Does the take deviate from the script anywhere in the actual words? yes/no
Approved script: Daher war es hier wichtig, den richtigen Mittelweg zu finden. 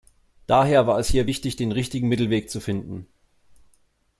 no